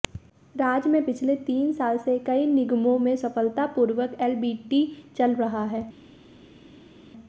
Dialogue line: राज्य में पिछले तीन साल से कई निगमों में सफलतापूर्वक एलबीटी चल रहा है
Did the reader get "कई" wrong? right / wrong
right